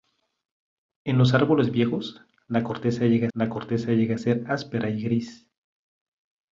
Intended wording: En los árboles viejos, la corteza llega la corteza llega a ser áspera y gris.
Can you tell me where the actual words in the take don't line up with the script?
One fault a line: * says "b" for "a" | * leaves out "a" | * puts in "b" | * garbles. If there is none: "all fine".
all fine